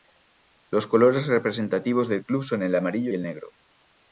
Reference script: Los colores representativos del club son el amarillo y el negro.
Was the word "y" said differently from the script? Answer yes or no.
yes